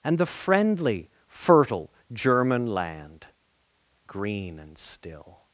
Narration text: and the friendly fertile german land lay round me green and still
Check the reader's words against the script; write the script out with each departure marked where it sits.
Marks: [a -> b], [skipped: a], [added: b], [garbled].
and the friendly fertile german land [skipped: lay round me] green and still